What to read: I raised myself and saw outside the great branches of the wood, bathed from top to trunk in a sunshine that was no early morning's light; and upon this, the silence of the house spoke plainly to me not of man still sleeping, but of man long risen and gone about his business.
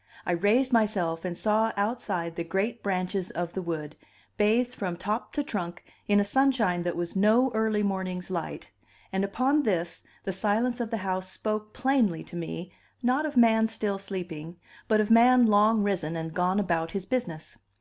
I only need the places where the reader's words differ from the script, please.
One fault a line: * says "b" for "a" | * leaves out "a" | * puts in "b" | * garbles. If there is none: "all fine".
all fine